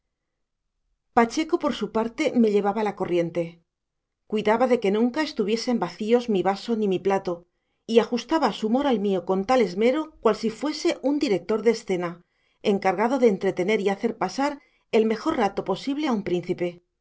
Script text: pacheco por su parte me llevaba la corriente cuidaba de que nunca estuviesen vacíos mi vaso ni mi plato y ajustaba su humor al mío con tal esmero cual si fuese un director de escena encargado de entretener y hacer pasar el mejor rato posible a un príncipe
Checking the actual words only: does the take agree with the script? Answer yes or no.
yes